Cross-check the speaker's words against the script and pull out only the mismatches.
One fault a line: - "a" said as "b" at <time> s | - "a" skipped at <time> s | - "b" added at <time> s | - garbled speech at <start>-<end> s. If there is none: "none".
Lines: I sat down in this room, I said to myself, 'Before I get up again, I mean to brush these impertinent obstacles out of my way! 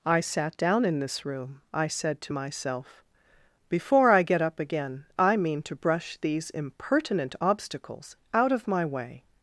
none